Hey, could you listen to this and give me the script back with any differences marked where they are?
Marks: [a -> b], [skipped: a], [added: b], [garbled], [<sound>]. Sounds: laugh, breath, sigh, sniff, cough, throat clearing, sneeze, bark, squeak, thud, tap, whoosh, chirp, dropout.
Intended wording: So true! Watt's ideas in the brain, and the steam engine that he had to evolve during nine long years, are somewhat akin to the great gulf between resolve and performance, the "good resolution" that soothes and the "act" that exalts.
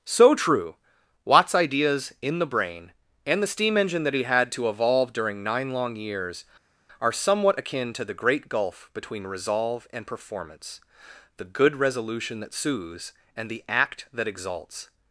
So true! Watt's ideas in the brain, and the steam engine that he had to evolve during nine long years, are somewhat akin to the great gulf between resolve and performance, the "good resolution" that soothes and the "act" that exalts.